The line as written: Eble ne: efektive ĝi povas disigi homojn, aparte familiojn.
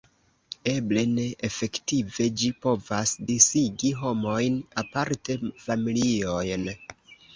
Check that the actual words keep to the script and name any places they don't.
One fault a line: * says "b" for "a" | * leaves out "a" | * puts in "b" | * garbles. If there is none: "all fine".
all fine